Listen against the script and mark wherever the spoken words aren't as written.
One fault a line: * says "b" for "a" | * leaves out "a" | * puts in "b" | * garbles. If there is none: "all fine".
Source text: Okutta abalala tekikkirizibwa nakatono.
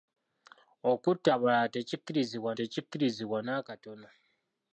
* puts in "tekikkirizibwa"